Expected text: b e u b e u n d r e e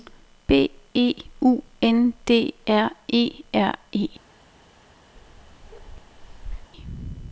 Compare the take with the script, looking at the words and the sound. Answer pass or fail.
fail